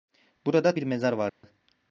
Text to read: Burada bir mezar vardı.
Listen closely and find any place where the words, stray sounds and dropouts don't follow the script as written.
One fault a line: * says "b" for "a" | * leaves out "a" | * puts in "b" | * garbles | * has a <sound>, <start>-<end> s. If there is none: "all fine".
* has a dropout, 1.3-1.4 s